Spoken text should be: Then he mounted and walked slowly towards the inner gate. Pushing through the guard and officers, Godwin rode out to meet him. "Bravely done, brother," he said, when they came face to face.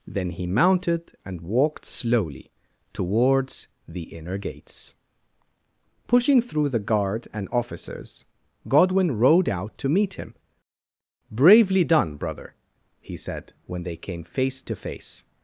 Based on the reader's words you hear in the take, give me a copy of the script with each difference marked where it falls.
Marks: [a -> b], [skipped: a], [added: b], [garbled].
Then he mounted and walked slowly towards the inner [gate. -> gates] Pushing through the guard and officers, Godwin rode out to meet him. "Bravely done, brother," he said, when they came face to face.